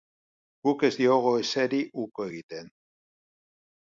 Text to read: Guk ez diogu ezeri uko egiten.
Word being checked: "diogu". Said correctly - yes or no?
yes